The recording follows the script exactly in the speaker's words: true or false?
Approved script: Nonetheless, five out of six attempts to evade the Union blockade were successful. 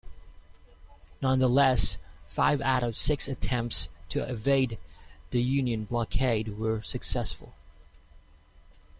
true